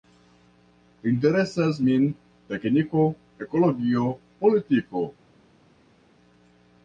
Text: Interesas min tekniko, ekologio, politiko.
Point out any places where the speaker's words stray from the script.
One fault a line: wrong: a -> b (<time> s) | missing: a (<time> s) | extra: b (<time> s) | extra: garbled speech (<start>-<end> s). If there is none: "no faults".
no faults